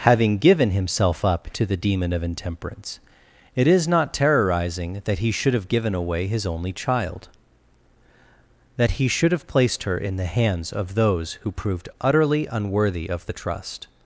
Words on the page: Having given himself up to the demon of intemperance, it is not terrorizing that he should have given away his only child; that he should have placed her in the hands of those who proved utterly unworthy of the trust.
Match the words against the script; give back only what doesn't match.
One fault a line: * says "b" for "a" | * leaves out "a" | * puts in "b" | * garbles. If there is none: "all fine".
all fine